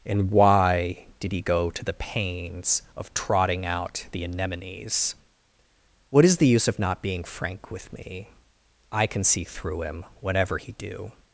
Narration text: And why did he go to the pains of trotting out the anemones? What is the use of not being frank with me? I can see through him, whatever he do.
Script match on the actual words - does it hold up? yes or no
yes